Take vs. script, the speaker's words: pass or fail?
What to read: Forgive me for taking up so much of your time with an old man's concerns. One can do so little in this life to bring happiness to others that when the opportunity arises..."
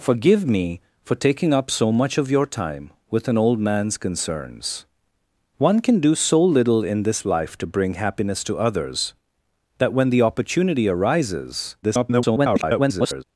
fail